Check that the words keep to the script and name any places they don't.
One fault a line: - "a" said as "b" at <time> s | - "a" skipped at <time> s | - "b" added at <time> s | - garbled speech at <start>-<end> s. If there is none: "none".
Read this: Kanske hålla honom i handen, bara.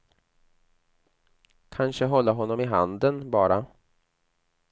none